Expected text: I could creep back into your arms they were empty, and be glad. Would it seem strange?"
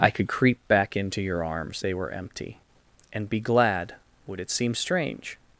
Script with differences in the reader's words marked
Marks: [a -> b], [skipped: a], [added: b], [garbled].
I could creep back into your arms they were empty, and be glad. Would it seem strange?"